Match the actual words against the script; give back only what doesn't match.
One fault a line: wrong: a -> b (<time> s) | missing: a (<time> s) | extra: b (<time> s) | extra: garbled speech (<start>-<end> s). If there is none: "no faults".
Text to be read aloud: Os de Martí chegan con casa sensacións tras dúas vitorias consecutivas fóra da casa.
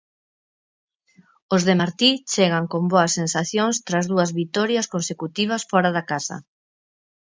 wrong: casa -> boas (2.9 s)